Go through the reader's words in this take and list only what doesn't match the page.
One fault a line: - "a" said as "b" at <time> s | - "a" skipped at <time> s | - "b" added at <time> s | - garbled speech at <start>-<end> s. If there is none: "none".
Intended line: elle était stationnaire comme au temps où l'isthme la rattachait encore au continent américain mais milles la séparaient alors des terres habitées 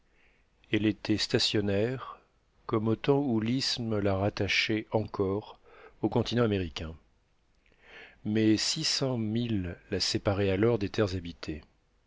- "six cents" added at 8.6 s